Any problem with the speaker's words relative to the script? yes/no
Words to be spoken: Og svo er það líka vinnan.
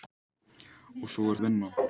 yes